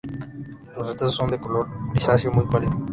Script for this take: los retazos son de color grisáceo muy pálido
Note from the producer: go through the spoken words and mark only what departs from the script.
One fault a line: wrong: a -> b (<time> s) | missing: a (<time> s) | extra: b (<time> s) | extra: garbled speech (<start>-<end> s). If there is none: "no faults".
no faults